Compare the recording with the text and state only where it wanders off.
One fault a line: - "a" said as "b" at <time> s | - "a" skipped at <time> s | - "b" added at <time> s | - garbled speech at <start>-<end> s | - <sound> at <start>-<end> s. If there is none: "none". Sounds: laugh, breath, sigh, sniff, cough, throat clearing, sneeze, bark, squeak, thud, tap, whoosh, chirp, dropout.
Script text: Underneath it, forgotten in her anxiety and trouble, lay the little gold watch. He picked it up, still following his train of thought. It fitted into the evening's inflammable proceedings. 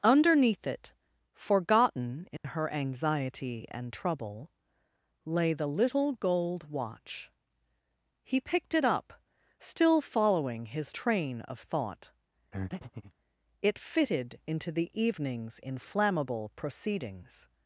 - dropout at 2.4-2.4 s
- breath at 12.5-13.1 s